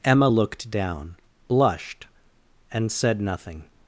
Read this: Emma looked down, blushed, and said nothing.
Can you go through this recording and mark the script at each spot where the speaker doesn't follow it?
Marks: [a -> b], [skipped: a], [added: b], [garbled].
Emma looked down, blushed, and said nothing.